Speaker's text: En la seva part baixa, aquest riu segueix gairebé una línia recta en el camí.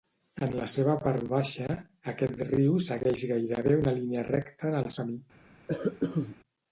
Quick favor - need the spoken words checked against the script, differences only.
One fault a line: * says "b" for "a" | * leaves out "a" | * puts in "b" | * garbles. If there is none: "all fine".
all fine